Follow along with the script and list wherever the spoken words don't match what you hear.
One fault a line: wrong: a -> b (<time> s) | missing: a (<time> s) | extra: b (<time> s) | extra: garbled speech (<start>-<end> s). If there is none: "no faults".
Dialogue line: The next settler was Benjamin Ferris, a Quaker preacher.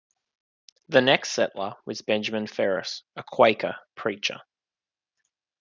no faults